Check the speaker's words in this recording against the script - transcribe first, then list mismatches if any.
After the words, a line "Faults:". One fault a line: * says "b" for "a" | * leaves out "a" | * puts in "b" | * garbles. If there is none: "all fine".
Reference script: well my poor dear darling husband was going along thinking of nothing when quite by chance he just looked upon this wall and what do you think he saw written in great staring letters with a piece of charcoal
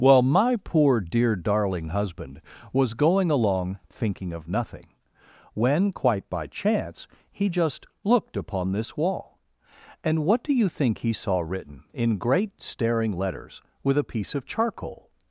well my poor dear darling husband was going along thinking of nothing when quite by chance he just looked upon this wall and what do you think he saw written in great staring letters with a piece of charcoal
Faults:
all fine